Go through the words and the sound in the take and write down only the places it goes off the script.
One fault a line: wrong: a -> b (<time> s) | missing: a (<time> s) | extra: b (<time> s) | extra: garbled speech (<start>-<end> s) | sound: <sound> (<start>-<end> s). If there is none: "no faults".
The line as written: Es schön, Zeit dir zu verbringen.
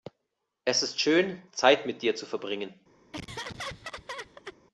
extra: ist (0.8 s)
extra: mit (1.9 s)
sound: laugh (3.1-4.6 s)